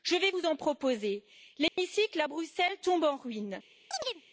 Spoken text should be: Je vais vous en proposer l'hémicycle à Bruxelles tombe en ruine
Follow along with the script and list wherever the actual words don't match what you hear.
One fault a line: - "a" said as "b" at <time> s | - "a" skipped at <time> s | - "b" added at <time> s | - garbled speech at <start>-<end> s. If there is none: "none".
none